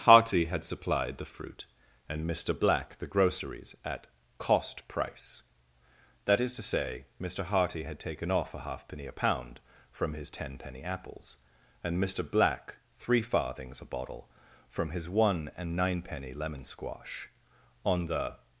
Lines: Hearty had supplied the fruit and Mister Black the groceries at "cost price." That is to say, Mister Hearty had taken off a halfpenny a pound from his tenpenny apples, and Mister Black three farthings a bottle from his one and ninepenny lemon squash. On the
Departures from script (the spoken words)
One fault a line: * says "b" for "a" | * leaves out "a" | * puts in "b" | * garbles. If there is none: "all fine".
all fine